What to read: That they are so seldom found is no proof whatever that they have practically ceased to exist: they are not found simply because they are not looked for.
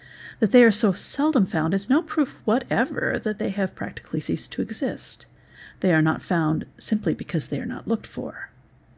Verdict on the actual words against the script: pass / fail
pass